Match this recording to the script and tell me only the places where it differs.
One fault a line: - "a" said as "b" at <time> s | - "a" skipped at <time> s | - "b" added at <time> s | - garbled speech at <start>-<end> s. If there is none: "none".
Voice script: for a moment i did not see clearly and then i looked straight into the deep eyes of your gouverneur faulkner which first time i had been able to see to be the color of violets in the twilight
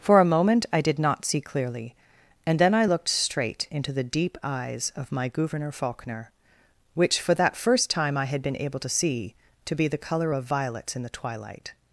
- "your" said as "my" at 5.1 s
- "for that" added at 7.2 s